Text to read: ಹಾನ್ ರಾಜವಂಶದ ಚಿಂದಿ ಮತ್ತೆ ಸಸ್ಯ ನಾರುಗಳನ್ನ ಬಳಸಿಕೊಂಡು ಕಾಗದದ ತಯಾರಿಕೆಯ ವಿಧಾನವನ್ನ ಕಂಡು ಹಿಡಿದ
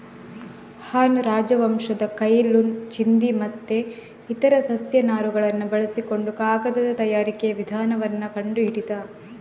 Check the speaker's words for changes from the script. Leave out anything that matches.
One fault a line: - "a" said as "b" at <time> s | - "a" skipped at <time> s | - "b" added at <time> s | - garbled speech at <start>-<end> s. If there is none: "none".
- "ಕೈ ಲುನ್" added at 2.1 s
- "ಇತರ" added at 4.3 s